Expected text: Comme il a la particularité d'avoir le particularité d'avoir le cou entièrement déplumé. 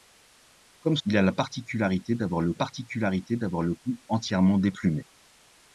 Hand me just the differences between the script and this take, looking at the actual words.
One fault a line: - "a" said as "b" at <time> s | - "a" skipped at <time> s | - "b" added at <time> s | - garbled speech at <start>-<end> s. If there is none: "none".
none